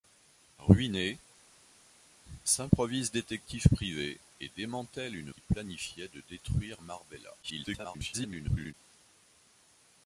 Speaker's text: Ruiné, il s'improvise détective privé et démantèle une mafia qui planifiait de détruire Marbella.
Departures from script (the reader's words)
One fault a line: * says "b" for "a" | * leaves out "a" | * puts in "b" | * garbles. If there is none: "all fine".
* leaves out "il"
* leaves out "mafia"
* garbles